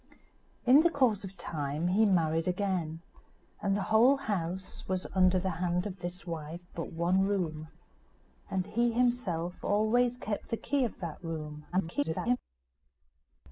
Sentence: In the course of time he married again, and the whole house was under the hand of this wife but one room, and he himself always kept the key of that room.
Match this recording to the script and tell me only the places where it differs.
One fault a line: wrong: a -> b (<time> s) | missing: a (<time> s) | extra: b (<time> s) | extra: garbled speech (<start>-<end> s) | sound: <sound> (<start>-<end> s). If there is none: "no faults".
extra: garbled speech (11.7-12.4 s)